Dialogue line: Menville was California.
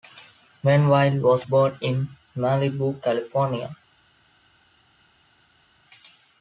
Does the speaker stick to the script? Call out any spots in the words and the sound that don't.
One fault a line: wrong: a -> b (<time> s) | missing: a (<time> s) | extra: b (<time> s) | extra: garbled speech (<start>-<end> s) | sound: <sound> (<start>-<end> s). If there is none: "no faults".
extra: born in Malibu (1.4 s)